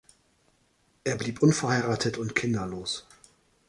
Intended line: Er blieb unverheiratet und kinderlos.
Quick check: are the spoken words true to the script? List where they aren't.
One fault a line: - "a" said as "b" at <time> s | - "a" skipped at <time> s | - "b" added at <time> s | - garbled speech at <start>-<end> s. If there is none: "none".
none